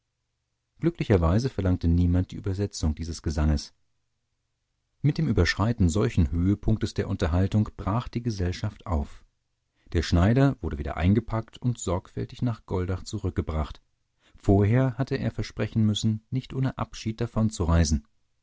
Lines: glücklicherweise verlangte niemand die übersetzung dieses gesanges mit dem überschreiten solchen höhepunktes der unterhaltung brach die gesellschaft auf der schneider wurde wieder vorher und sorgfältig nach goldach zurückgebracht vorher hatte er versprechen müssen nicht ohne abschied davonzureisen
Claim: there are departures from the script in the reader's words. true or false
true